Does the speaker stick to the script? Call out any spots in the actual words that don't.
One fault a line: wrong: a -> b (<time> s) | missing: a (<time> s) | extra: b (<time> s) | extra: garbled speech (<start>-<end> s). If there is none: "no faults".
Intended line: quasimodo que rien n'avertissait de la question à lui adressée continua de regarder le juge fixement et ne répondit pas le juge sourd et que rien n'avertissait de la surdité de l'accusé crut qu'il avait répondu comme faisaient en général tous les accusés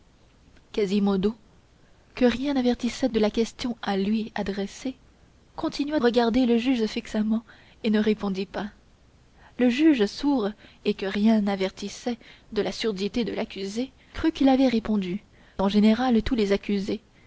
missing: de (6.0 s)
missing: comme faisaient (15.2 s)